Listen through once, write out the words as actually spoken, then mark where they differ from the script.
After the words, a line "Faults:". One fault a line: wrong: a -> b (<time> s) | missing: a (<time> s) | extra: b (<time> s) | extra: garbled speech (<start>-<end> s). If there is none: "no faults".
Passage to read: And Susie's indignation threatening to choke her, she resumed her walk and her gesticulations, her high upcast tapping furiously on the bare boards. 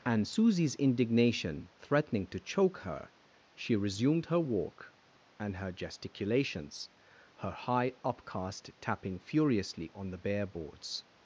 And Susie's indignation threatening to choke her, she resumed her walk and her gesticulations, her high upcast tapping furiously on the bare boards.
Faults:
no faults